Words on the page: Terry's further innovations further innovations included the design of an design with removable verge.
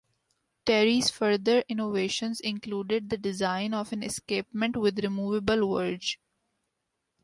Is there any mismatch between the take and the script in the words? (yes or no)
yes